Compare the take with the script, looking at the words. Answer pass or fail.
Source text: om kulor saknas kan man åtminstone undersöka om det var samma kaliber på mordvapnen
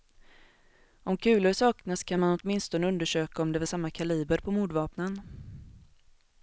pass